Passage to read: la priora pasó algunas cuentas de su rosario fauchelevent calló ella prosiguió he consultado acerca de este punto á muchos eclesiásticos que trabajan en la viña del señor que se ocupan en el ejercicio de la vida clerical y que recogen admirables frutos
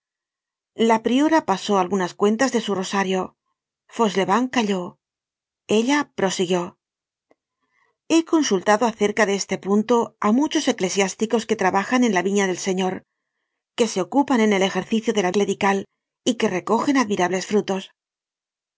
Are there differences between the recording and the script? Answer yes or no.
yes